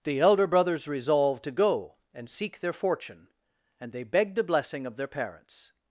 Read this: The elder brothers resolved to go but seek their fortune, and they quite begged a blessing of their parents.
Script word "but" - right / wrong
wrong